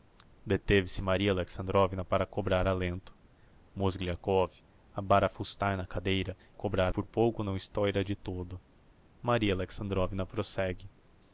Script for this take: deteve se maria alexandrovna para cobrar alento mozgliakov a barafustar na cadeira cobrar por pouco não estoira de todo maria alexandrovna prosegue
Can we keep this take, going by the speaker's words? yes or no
yes